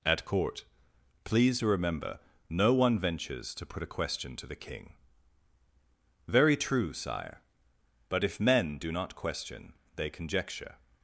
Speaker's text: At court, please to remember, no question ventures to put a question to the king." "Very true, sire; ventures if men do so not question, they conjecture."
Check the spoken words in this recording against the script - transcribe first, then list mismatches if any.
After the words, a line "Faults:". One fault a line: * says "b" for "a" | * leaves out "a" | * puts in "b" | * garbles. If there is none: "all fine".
At court, please to remember, no one ventures to put a question to the king." "Very true, sire; but if men do not question, they conjecture."
Faults:
* says "one" for "question"
* says "but" for "ventures"
* leaves out "so"